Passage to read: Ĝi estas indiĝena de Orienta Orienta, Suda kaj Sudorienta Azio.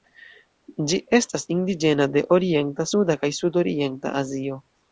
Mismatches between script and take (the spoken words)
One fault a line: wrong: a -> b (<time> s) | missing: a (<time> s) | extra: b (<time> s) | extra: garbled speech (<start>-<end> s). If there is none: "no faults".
missing: Orienta (2.9 s)